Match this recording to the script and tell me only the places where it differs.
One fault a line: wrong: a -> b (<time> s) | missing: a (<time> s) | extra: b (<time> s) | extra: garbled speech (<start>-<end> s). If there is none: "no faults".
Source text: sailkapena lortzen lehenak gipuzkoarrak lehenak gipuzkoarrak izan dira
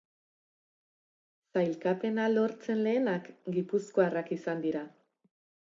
missing: lehenak gipuzkoarrak (4.4 s)